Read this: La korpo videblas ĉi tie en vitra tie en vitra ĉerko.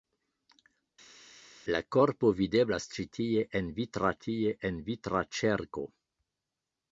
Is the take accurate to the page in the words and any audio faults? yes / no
yes